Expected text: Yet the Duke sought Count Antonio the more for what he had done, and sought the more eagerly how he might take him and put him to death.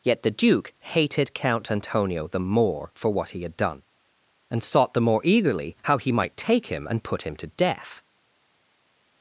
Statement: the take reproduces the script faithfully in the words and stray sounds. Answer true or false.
false